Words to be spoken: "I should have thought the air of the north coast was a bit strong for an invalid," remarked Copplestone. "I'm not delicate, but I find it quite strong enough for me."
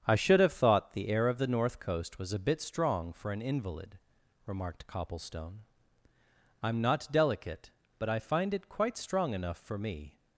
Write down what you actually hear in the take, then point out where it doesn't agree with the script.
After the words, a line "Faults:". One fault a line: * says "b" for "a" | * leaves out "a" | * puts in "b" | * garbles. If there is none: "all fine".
"I should have thought the air of the north coast was a bit strong for an invalid," remarked Copplestone. "I'm not delicate, but I find it quite strong enough for me."
Faults:
all fine